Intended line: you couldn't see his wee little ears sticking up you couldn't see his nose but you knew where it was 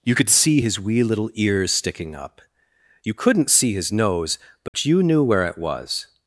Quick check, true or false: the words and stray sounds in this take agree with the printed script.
false